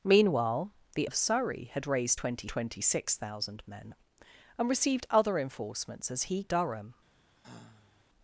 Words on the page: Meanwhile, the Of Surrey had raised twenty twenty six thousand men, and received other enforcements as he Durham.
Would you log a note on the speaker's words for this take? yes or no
no